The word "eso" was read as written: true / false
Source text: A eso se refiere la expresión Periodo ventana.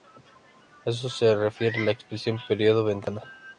true